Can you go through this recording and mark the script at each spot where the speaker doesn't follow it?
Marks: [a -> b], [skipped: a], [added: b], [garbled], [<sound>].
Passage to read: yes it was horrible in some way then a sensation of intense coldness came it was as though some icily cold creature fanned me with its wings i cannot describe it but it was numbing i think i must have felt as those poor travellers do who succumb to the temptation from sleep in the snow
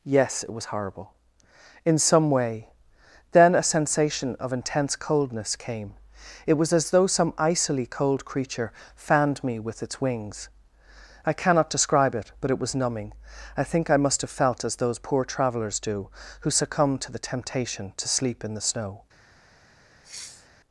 yes it was horrible in some way then a sensation of intense coldness came it was as though some icily cold creature fanned me with its wings i cannot describe it but it was numbing i think i must have felt as those poor travellers do who succumb to the temptation [from -> to] sleep in the snow [sniff]